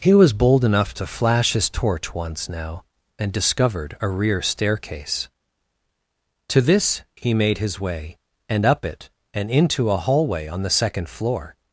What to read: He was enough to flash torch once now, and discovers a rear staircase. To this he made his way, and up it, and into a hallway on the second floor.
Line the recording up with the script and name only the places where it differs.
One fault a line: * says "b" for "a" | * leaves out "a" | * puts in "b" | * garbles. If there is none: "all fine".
* puts in "bold"
* puts in "his"
* says "discovered" for "discovers"